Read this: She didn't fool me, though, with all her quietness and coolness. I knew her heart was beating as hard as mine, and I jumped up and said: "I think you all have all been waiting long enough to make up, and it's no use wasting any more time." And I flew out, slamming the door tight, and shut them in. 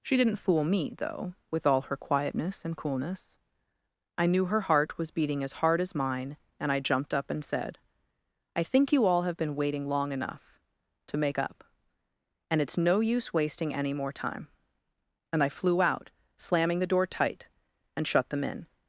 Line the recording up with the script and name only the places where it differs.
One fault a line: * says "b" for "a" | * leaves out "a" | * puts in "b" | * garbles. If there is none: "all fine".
* leaves out "all"